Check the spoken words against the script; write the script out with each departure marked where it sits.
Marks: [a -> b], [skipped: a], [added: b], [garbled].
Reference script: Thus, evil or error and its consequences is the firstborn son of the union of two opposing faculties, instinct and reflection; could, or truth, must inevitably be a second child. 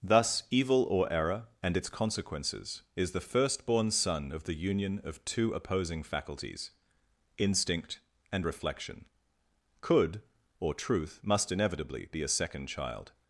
Thus, evil or error and its consequences is the firstborn son of the union of two opposing faculties, instinct and reflection; could, or truth, must inevitably be a second child.